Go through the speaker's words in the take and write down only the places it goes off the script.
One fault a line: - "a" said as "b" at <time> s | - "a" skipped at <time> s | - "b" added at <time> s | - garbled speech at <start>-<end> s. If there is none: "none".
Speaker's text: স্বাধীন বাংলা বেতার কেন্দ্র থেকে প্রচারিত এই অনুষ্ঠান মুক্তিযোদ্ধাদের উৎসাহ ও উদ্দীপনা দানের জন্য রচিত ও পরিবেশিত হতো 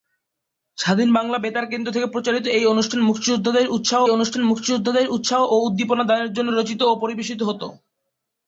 - "অনুষ্ঠান মুক্তিযোদ্ধাদের উৎসাহ" added at 4.1 s